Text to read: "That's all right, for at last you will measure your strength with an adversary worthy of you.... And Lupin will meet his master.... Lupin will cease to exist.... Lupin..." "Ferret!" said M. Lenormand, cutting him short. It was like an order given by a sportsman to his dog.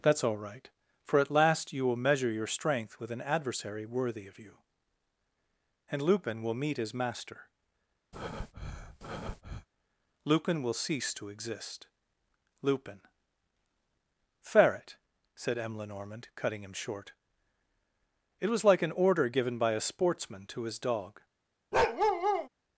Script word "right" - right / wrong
right